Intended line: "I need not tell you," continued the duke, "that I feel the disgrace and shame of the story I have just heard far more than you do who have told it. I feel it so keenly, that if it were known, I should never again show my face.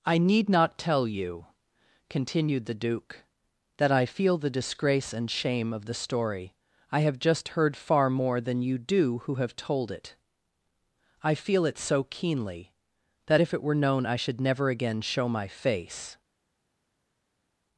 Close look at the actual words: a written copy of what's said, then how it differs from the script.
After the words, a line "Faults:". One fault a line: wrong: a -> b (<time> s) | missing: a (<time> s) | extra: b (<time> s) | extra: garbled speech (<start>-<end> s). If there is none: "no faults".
"I need not tell you," continued the duke, "that I feel the disgrace and shame of the story I have just heard far more than you do who have told it. I feel it so keenly, that if it were known, I should never again show my face.
Faults:
no faults